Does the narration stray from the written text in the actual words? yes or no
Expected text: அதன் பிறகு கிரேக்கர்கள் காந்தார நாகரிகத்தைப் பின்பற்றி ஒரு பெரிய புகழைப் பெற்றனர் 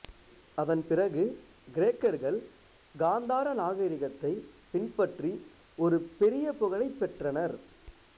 no